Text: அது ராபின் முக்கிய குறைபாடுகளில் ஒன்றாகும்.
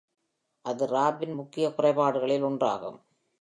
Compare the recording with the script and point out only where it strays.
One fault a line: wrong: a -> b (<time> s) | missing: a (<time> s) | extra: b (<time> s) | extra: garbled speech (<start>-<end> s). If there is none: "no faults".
no faults